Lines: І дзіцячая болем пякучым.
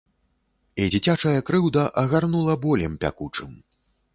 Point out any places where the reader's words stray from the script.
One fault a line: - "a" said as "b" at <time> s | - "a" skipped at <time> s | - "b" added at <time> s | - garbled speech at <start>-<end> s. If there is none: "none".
- "крыўда агарнула" added at 1.5 s